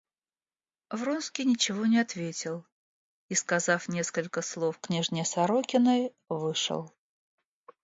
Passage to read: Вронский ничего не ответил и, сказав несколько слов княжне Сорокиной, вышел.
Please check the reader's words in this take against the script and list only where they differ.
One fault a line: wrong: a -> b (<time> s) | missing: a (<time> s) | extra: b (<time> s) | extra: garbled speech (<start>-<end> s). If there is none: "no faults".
no faults